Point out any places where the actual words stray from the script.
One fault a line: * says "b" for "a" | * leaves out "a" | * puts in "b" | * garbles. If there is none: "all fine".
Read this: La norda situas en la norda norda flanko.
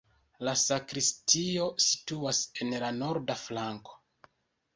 * says "sakristio" for "norda"
* leaves out "norda"